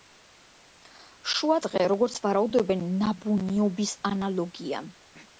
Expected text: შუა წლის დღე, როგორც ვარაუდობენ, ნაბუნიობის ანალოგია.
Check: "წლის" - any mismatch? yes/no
yes